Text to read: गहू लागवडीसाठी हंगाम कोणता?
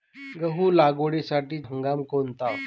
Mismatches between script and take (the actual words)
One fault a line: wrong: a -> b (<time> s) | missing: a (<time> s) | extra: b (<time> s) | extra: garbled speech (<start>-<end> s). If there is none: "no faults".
no faults